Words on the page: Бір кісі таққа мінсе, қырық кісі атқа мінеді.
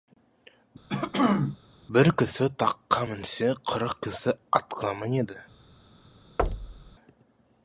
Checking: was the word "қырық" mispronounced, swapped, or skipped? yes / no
no